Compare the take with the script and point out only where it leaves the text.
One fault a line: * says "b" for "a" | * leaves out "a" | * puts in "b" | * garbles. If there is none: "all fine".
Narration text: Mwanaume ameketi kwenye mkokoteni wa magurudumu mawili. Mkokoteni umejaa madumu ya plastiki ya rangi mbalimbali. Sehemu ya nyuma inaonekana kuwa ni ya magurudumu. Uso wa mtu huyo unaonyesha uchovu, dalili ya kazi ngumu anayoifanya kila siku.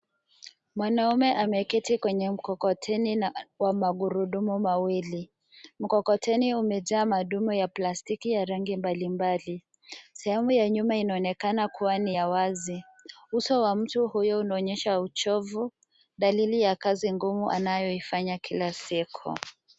* says "wazi" for "magurudumu"